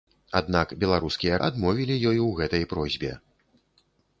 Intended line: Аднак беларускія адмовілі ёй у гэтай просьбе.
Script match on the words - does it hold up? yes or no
yes